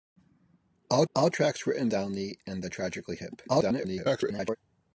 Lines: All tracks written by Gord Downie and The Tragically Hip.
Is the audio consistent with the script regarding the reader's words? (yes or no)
no